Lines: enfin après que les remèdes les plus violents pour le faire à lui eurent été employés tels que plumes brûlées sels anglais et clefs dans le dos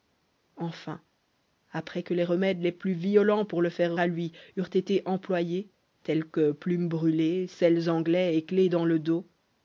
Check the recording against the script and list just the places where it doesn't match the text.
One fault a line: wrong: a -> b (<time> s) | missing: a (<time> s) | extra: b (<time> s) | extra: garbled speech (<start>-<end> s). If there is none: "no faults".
no faults